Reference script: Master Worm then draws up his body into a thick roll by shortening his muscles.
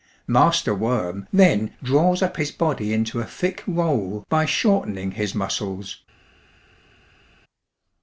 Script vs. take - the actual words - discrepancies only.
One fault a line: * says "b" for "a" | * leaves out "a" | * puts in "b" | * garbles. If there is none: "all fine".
all fine